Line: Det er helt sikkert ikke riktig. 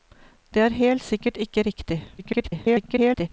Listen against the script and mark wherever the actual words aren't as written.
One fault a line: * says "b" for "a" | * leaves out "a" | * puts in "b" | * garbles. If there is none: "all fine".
* garbles